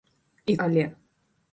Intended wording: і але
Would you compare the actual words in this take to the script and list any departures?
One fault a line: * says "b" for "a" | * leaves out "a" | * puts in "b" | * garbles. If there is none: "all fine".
all fine